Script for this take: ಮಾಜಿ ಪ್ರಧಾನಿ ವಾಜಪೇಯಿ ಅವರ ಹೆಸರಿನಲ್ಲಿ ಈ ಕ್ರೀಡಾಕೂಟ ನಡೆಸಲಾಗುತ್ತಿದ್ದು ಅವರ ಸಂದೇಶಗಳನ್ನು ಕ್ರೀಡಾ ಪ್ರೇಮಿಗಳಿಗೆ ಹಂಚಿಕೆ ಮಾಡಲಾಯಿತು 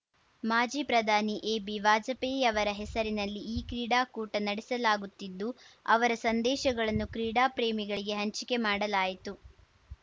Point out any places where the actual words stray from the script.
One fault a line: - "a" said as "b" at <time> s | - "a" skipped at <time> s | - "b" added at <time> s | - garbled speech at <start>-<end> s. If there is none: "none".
- "ಎಬಿ" added at 1.5 s